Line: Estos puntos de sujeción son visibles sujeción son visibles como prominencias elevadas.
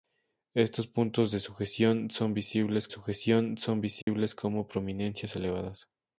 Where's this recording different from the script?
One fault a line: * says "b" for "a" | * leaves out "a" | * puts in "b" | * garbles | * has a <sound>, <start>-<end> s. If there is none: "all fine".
* has a dropout, 4.0-4.1 s